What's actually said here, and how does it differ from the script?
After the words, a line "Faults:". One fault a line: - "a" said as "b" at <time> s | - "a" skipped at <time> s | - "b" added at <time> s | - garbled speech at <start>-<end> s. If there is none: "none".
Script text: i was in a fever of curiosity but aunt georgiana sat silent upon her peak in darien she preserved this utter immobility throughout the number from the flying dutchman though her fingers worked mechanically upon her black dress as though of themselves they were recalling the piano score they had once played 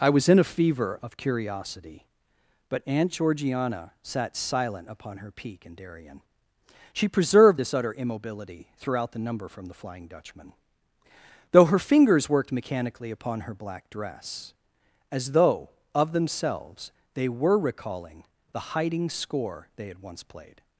i was in a fever of curiosity but aunt georgiana sat silent upon her peak in darien she preserved this utter immobility throughout the number from the flying dutchman though her fingers worked mechanically upon her black dress as though of themselves they were recalling the hiding score they had once played
Faults:
- "piano" said as "hiding" at 18.8 s